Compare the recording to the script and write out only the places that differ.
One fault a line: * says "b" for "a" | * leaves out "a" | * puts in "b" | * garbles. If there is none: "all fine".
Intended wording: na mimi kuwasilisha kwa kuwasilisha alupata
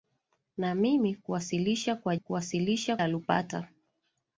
all fine